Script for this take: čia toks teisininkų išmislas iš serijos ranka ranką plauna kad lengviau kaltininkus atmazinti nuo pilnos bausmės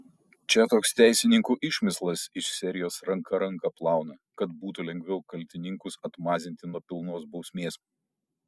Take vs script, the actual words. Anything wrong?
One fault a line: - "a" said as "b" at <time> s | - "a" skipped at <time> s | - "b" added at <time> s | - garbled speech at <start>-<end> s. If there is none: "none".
- "būtų" added at 4.6 s